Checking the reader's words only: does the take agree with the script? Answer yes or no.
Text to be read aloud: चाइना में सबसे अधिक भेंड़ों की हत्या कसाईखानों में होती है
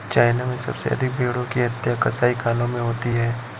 yes